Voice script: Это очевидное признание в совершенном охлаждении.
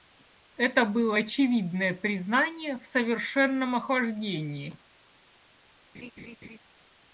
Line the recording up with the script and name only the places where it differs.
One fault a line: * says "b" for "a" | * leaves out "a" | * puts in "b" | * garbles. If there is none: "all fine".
* puts in "было"